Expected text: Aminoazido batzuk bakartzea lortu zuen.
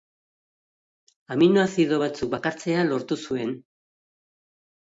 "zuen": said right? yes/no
yes